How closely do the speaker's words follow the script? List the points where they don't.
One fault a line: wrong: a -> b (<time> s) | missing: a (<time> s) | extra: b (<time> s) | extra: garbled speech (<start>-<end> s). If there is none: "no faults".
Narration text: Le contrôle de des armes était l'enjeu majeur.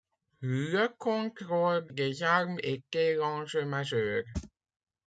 no faults